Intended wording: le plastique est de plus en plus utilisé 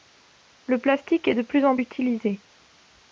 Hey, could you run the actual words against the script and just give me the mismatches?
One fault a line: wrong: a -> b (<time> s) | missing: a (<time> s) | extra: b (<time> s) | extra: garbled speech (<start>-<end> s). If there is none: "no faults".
missing: plus (1.8 s)